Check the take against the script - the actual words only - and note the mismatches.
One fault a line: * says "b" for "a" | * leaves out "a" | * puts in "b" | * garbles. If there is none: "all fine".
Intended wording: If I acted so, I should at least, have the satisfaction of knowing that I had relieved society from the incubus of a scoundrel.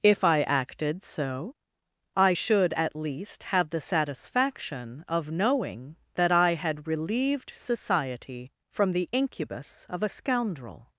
all fine